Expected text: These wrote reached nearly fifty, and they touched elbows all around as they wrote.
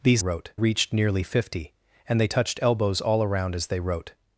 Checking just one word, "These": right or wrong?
right